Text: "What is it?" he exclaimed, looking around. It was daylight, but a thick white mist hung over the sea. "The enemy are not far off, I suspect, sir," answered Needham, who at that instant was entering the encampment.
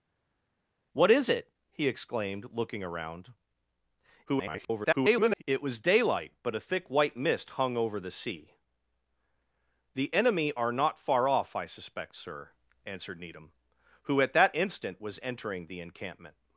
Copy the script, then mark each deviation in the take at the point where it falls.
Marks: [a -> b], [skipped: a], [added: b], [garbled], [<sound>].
"What is it?" he exclaimed, looking around. [garbled] It was daylight, but a thick white mist hung over the sea. "The enemy are not far off, I suspect, sir," answered Needham, who at that instant was entering the encampment.